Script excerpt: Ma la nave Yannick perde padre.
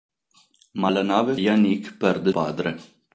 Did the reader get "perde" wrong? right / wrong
right